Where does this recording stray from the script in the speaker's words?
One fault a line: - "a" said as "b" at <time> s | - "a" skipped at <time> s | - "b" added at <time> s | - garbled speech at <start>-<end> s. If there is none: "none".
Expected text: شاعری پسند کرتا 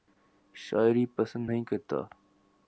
- "نہیں" added at 1.5 s